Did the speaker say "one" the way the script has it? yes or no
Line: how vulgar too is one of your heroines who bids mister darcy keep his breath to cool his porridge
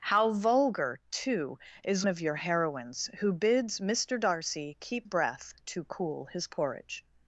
no